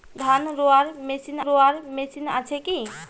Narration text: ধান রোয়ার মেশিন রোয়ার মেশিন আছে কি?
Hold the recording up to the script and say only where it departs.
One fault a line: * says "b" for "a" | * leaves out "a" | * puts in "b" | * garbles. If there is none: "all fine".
all fine